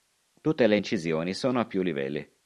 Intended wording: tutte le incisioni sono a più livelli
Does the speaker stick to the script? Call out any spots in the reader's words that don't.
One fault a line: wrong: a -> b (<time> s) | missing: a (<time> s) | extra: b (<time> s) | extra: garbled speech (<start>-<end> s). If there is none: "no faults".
no faults